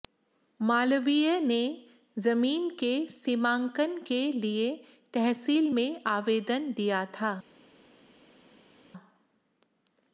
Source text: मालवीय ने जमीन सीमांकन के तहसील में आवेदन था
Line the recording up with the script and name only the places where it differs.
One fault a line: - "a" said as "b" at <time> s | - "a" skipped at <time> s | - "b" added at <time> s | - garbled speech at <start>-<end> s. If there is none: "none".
- "के" added at 2.8 s
- "लिए" added at 4.3 s
- "दिया" added at 6.7 s